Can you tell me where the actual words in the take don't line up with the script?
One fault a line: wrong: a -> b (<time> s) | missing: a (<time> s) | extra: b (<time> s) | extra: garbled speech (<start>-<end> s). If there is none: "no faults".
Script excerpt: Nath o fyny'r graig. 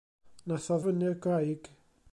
no faults